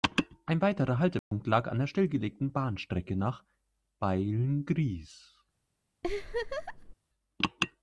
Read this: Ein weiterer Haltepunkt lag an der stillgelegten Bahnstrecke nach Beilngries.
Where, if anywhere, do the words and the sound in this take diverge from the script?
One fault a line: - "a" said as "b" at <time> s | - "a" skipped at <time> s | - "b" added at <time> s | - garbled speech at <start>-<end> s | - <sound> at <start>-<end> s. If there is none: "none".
- dropout at 1.2-1.3 s
- laugh at 6.0-6.9 s